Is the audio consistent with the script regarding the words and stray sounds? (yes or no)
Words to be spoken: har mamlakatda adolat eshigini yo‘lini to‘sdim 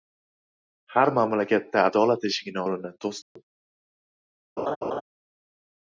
no